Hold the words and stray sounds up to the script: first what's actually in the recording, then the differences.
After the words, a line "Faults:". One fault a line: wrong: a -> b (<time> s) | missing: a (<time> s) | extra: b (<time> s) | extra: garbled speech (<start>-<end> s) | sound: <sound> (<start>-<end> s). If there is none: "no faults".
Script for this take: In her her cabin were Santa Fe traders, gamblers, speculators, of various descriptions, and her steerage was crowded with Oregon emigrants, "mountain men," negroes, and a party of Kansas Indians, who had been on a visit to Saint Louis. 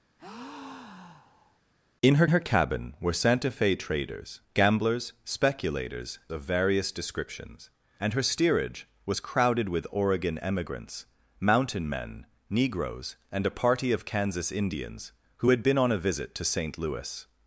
In her her cabin were Santa Fe traders, gamblers, speculators, of various descriptions, and her steerage was crowded with Oregon emigrants, "mountain men," negroes, and a party of Kansas Indians, who had been on a visit to Saint Louis.
Faults:
sound: breath (0.2-1.6 s)